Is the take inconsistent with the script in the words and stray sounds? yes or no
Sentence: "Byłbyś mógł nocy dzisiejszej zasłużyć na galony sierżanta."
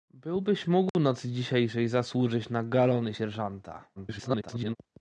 yes